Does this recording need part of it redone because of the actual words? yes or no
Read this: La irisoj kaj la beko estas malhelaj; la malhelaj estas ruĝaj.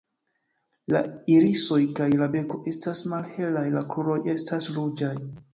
yes